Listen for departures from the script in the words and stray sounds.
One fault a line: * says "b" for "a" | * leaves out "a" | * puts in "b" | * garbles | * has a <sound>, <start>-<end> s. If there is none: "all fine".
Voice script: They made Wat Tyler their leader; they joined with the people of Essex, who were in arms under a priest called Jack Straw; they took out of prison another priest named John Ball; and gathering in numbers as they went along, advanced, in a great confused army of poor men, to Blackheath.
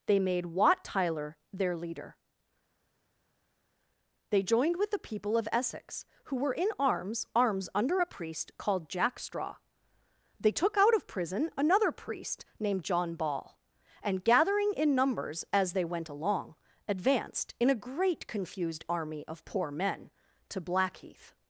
* puts in "arms"